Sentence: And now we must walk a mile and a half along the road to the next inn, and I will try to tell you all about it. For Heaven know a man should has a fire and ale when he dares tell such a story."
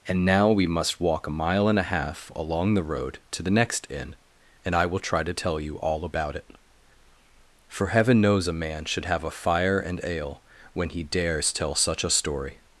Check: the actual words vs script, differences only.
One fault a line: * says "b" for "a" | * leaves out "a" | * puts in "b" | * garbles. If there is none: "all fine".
* says "knows" for "know"
* says "have" for "has"